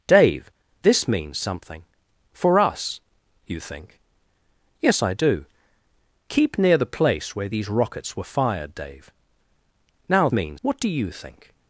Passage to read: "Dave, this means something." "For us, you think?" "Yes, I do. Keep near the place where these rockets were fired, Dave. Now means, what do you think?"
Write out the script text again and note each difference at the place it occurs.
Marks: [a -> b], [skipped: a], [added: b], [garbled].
"Dave, this means something." "For us, you think?" "Yes, I do. Keep near the place where these rockets were fired, Dave. Now means, what do you think?"